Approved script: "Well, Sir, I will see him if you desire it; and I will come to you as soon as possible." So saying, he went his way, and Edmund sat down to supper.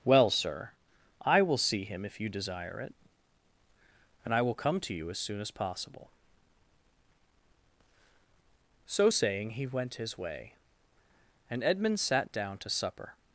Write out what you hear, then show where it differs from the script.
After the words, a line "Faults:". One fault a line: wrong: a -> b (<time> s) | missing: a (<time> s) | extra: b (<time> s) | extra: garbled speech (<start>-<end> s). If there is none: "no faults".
"Well, Sir, I will see him if you desire it; and I will come to you as soon as possible." So saying, he went his way, and Edmund sat down to supper.
Faults:
no faults